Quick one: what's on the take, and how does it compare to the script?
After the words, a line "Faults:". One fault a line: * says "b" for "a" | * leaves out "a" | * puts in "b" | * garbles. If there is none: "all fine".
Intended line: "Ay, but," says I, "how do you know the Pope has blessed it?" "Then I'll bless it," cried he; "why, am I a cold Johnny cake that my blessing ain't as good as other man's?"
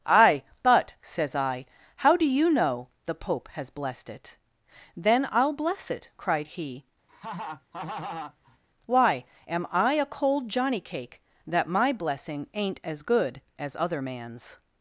"Ay, but," says I, "how do you know the Pope has blessed it?" "Then I'll bless it," cried he; "why, am I a cold Johnny cake that my blessing ain't as good as other man's?"
Faults:
all fine